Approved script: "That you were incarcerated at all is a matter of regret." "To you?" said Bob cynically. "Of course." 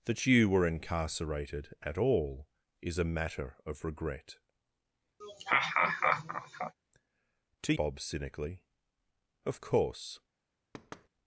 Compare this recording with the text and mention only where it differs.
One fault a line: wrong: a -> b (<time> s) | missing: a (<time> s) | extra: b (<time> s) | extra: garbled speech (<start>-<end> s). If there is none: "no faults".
missing: you said (7.7 s)